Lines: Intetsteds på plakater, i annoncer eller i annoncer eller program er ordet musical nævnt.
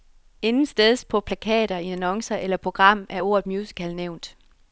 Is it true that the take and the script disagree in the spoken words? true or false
true